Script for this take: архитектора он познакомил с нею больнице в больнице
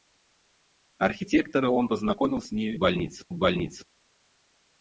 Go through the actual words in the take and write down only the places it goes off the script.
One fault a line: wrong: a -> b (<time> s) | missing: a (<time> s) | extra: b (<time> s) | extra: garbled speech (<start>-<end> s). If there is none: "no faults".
no faults